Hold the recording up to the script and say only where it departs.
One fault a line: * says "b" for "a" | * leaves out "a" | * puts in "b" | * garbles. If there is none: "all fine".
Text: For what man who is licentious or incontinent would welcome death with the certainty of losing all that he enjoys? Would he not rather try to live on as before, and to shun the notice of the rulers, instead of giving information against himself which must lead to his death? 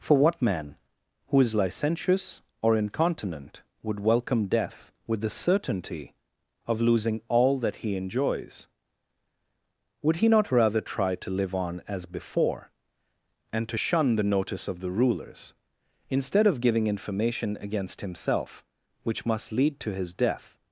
all fine